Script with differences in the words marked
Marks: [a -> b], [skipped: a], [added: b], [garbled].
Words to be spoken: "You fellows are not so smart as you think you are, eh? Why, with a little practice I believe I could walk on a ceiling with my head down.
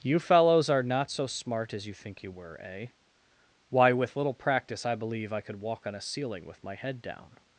"You fellows are not so smart as you think you [are, -> were] eh? Why, with [skipped: a] little practice I believe I could walk on a ceiling with my head down.